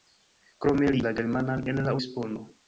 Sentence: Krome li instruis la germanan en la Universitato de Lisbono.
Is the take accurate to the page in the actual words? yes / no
no